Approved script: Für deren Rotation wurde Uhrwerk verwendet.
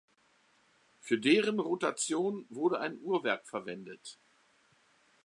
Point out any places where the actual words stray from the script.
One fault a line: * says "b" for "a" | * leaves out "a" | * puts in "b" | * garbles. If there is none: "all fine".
* puts in "ein"